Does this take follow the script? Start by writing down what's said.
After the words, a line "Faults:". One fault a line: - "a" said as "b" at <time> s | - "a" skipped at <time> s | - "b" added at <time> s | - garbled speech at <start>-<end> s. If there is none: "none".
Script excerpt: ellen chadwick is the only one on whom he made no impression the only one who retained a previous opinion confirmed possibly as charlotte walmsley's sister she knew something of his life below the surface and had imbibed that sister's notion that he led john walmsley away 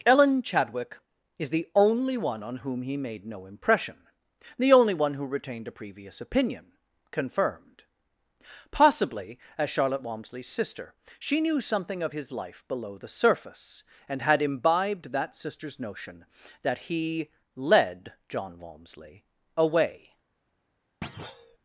ellen chadwick is the only one on whom he made no impression the only one who retained a previous opinion confirmed possibly as charlotte walmsley's sister she knew something of his life below the surface and had imbibed that sister's notion that he led john walmsley away
Faults:
none